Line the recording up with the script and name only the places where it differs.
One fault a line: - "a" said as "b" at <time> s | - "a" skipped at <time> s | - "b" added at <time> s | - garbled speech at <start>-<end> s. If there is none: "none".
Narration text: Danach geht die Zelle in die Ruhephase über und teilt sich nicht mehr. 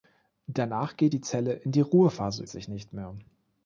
- "über und teilt" skipped at 2.4 s